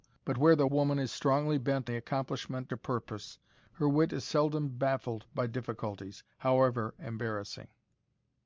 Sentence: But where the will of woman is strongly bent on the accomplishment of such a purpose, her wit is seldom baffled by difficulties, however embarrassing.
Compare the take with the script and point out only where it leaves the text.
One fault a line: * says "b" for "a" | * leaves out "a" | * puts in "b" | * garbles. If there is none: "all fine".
* leaves out "will of"
* leaves out "on"
* leaves out "of such"